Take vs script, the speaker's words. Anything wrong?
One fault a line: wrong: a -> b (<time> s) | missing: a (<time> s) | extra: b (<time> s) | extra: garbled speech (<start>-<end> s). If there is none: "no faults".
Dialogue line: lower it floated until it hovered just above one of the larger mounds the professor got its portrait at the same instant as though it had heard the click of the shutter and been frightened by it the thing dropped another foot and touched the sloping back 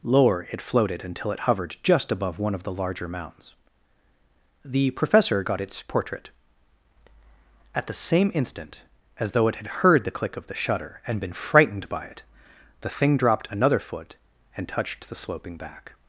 no faults